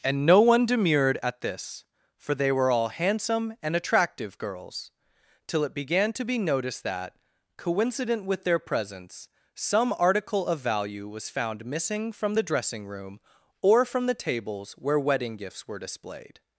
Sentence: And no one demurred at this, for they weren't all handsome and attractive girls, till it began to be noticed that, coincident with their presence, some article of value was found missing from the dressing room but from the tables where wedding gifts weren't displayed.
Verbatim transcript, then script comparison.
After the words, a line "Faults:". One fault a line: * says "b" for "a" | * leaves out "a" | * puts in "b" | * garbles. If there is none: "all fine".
And no one demurred at this, for they were all handsome and attractive girls, till it began to be noticed that, coincident with their presence, some article of value was found missing from the dressing room or from the tables where wedding gifts were displayed.
Faults:
* says "were" for "weren't"
* says "or" for "but"
* says "were" for "weren't"